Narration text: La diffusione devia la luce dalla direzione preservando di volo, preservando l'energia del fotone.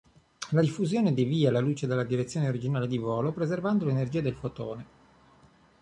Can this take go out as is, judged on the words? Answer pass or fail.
fail